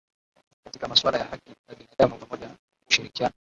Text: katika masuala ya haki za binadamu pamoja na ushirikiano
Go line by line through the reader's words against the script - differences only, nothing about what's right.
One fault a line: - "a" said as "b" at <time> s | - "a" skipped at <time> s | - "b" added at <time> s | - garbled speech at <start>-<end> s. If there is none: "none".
none